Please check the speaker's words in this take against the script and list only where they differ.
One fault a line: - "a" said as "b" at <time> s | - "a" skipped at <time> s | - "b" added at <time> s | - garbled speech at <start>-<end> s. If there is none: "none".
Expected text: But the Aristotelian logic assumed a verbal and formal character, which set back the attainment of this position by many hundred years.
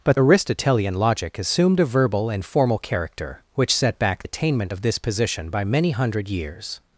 - "the" skipped at 0.2 s
- "the" skipped at 4.2 s